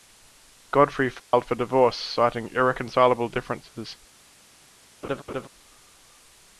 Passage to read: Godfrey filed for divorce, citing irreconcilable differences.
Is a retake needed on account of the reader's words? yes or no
no